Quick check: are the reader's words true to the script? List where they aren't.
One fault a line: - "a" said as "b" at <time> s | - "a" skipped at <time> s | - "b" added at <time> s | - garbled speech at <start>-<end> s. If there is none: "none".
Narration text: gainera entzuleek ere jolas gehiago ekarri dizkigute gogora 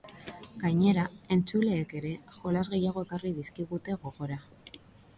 none